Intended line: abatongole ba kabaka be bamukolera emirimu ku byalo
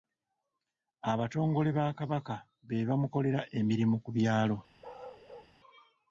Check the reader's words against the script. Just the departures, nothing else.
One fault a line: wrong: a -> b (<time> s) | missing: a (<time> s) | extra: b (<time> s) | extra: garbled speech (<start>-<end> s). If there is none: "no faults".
no faults